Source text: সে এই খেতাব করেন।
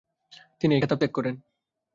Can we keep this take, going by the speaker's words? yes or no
no